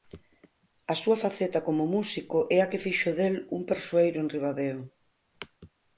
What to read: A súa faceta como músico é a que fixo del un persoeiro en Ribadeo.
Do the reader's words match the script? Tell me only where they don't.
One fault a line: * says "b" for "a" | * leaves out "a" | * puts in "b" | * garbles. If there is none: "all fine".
all fine